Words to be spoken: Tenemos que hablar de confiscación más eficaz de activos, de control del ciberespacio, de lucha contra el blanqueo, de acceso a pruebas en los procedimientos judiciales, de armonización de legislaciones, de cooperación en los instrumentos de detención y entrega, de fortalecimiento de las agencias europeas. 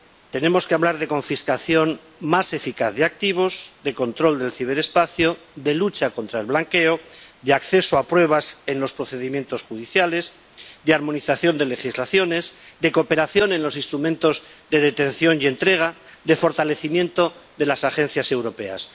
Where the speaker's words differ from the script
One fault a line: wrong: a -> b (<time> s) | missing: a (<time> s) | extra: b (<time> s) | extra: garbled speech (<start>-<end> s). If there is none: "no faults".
no faults